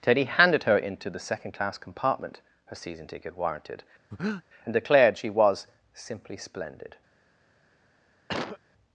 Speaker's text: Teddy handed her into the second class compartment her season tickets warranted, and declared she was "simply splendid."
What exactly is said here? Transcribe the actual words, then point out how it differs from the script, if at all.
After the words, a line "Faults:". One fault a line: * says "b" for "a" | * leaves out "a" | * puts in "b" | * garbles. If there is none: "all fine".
Teddy handed her into the second class compartment her season ticket warranted, and declared she was "simply splendid."
Faults:
* says "ticket" for "tickets"